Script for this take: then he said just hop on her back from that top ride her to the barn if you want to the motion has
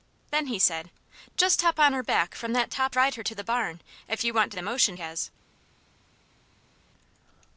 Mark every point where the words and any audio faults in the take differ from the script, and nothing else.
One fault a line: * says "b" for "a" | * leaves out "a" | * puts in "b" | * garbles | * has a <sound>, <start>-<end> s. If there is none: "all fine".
all fine